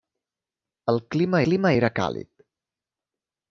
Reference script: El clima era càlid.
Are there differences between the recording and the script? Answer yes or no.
yes